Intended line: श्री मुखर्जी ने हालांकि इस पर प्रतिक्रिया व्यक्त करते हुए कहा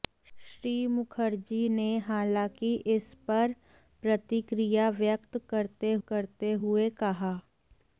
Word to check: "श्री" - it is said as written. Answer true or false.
true